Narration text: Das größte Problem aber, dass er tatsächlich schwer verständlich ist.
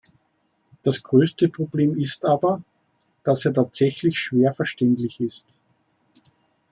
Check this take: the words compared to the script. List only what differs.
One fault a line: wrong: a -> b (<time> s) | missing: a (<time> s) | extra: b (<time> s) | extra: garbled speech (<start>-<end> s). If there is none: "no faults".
extra: ist (2.0 s)